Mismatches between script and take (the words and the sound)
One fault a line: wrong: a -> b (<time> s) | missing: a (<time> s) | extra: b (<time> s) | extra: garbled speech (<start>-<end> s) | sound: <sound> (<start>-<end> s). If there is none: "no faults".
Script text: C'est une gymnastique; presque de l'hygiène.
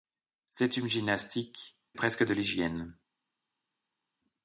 no faults